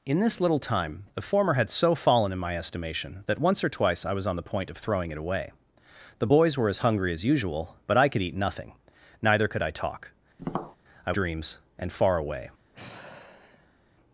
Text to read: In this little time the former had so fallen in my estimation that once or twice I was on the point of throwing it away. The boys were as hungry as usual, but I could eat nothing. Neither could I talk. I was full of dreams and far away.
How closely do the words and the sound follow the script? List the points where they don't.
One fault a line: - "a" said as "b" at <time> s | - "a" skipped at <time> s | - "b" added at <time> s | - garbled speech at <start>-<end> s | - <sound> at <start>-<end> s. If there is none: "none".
- tap at 10.4-10.8 s
- "was full of" skipped at 11.1 s
- sigh at 12.7-13.8 s